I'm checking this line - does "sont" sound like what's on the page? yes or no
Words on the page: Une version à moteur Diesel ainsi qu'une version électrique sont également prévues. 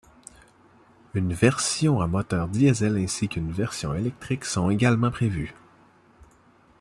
yes